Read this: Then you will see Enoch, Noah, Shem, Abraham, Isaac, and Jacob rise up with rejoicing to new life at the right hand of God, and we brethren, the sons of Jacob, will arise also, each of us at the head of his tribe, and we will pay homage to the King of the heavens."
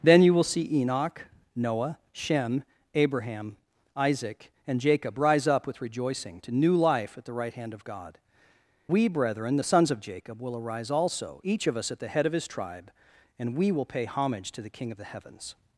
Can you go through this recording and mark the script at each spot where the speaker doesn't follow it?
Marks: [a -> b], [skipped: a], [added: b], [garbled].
Then you will see Enoch, Noah, Shem, Abraham, Isaac, and Jacob rise up with rejoicing to new life at the right hand of God, [skipped: and] we brethren, the sons of Jacob, will arise also, each of us at the head of his tribe, and we will pay homage to the King of the heavens."